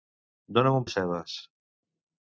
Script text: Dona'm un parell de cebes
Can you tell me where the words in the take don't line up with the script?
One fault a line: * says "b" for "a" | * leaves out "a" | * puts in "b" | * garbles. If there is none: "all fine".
* leaves out "parell"